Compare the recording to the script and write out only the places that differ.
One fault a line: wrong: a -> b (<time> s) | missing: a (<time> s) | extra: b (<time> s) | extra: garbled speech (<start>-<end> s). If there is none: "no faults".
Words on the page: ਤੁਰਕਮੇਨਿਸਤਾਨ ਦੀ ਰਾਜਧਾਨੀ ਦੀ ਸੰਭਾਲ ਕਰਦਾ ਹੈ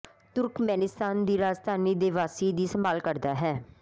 extra: ਦੇ ਵਾਸੀ (1.9 s)